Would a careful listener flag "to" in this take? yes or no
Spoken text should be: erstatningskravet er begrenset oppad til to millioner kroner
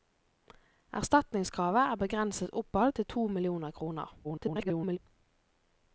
no